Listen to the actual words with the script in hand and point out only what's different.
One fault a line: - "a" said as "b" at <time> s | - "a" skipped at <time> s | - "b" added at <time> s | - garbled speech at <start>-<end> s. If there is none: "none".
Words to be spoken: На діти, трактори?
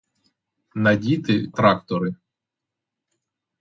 none